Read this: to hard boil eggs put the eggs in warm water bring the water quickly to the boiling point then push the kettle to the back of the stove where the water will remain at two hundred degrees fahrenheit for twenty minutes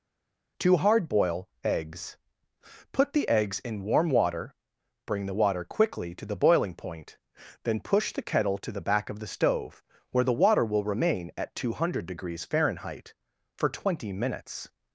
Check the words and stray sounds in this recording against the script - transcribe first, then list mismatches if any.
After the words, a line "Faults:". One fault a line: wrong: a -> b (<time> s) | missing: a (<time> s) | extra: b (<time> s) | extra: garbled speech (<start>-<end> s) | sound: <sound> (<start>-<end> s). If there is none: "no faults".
to hard boil eggs put the eggs in warm water bring the water quickly to the boiling point then push the kettle to the back of the stove where the water will remain at two hundred degrees fahrenheit for twenty minutes
Faults:
no faults